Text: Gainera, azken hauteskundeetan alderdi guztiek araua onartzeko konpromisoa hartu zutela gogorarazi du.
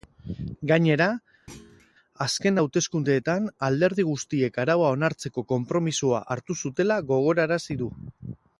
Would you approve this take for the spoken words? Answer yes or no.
yes